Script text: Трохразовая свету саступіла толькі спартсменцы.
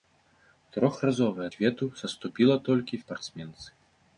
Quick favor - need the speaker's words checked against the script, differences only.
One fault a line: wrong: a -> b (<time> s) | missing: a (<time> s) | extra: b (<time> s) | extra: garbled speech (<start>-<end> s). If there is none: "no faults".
no faults